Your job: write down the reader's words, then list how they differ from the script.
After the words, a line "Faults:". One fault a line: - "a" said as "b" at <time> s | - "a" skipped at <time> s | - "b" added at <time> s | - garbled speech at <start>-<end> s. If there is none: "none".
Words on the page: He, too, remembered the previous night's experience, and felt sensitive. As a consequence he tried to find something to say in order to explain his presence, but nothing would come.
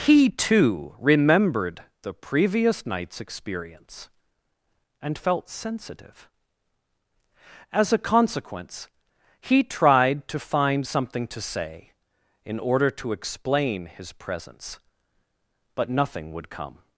He, too, remembered the previous night's experience, and felt sensitive. As a consequence he tried to find something to say in order to explain his presence, but nothing would come.
Faults:
none